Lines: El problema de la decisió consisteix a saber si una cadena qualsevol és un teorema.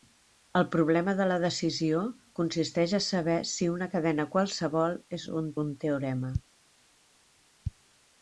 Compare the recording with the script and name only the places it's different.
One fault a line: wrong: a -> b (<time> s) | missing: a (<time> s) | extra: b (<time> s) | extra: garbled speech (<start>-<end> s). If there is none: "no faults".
extra: un (5.7 s)